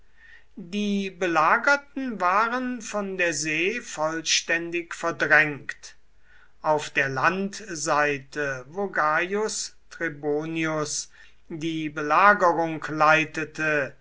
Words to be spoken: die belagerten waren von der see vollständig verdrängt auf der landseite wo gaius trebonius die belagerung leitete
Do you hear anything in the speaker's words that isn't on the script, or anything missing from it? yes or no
no